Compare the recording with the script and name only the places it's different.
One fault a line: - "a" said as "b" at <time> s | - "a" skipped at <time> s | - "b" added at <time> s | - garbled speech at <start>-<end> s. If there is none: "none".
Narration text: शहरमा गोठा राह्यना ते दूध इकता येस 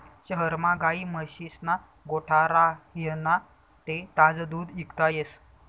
- "गायी म्हशीस्ना" added at 0.8 s
- "ताजं" added at 4.2 s